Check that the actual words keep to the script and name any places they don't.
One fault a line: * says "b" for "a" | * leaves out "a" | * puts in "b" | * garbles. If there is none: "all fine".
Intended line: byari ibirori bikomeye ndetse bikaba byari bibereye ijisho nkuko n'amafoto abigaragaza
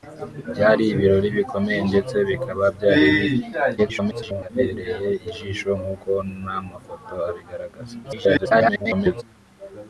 * garbles
* garbles